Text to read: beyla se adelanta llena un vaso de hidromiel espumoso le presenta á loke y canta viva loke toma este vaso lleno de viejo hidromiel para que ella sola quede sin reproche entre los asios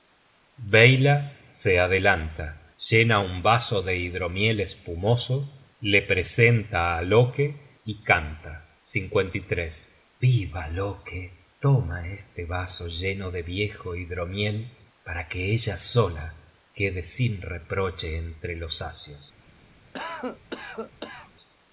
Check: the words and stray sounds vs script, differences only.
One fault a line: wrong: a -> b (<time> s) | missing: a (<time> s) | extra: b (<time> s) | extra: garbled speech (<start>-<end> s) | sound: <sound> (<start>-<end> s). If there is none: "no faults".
sound: cough (19.9-21.3 s)